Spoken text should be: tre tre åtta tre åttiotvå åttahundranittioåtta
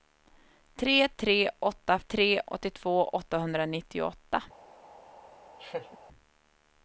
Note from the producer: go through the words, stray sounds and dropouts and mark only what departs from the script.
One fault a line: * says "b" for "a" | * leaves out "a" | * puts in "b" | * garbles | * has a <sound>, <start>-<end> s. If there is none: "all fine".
* has a laugh, 5.6-6.0 s